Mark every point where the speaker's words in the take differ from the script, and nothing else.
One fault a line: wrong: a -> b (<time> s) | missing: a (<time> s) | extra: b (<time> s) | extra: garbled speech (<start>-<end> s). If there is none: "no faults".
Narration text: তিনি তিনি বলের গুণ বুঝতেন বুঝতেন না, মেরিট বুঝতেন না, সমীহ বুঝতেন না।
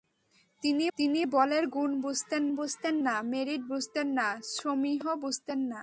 no faults